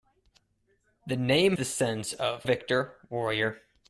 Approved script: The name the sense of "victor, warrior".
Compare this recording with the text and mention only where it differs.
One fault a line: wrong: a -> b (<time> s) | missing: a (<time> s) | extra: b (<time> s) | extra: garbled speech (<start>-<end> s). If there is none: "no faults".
no faults